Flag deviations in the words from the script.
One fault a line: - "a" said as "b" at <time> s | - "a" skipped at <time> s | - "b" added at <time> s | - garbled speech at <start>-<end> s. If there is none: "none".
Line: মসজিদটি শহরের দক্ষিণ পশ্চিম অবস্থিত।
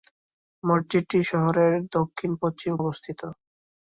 none